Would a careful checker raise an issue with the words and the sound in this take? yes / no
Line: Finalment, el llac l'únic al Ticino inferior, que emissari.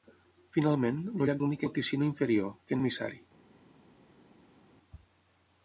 no